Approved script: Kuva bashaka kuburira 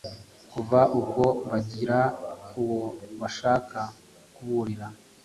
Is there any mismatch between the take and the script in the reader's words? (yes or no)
yes